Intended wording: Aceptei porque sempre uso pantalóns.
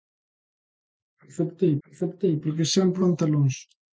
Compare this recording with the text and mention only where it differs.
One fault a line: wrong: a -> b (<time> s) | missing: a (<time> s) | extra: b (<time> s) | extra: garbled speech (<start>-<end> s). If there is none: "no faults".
extra: aceptei (1.9 s)
missing: uso (3.0 s)